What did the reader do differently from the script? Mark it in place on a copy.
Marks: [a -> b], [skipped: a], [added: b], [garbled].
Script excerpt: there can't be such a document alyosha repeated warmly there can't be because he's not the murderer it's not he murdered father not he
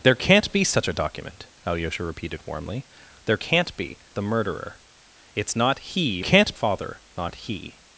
there can't be such a document alyosha repeated warmly there can't be [skipped: because he's not] the murderer it's not he [murdered -> can't] father not he